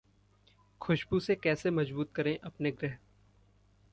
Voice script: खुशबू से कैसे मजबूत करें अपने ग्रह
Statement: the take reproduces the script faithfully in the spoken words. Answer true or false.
true